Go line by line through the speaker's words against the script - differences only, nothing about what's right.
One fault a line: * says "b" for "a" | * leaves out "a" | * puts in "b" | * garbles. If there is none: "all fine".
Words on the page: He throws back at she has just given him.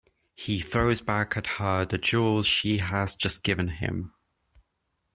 * puts in "her the jewels"